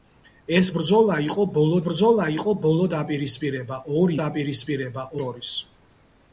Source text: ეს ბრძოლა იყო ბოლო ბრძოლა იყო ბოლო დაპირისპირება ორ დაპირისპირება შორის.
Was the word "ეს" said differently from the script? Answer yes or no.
no